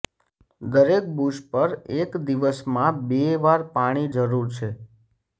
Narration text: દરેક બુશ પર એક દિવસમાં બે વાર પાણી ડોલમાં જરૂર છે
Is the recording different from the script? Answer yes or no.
yes